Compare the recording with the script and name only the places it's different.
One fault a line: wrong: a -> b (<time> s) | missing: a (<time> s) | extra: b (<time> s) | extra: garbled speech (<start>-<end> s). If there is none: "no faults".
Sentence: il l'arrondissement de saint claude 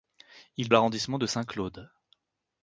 no faults